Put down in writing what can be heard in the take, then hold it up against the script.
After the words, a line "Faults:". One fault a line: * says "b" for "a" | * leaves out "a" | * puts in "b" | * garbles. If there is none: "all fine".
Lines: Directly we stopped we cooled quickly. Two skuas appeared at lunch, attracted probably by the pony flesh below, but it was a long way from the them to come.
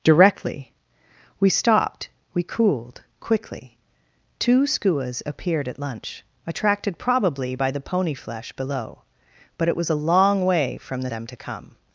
Directly we stopped we cooled quickly. Two skuas appeared at lunch, attracted probably by the pony flesh below, but it was a long way from the them to come.
Faults:
all fine